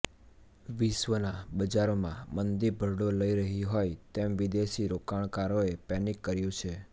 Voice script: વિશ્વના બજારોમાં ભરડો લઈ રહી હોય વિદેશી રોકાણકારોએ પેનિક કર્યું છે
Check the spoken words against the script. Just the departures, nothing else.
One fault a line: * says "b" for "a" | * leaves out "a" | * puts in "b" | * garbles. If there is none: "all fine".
* puts in "મંદી"
* puts in "તેમ"